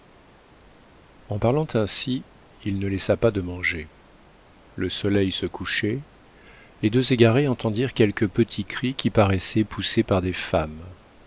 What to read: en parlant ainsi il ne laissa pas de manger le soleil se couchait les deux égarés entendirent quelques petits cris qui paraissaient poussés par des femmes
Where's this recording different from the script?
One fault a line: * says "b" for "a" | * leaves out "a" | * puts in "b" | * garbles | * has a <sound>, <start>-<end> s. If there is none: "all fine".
all fine